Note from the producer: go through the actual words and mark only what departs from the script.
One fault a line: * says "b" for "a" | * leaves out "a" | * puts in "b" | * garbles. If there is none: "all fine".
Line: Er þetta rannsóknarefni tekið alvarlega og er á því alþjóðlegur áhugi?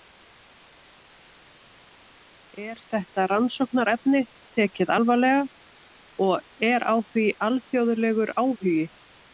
all fine